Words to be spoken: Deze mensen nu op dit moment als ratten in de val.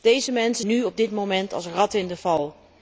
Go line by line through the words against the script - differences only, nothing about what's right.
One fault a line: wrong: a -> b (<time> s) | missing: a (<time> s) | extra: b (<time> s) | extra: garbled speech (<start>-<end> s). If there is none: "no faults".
no faults